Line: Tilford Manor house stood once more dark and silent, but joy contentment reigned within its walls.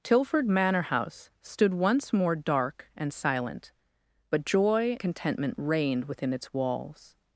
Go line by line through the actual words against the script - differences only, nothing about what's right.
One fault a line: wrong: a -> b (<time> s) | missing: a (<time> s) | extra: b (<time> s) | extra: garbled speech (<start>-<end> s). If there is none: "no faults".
no faults